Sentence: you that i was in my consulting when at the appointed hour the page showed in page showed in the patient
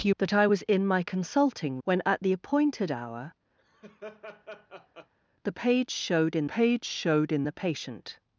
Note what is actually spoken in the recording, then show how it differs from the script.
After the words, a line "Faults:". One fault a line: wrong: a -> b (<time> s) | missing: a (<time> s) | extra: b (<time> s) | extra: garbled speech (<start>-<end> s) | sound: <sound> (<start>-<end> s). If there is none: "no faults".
you that i was in my consulting when at the appointed hour the page showed in page showed in the patient
Faults:
sound: laugh (3.6-5.1 s)